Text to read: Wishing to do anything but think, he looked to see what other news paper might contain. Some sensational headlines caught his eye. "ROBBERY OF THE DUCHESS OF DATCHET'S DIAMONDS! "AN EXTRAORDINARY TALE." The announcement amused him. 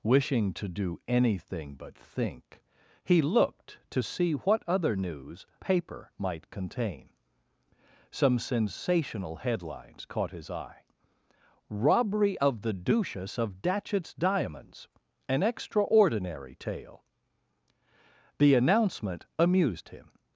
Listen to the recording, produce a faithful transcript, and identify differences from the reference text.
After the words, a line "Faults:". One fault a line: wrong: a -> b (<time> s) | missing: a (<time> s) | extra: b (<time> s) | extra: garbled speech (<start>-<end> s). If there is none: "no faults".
Wishing to do anything but think, he looked to see what other news paper might contain. Some sensational headlines caught his eye. "ROBBERY OF THE DUCHESS OF DATCHET'S DIAMONDS! "AN EXTRAORDINARY TALE." The announcement amused him.
Faults:
no faults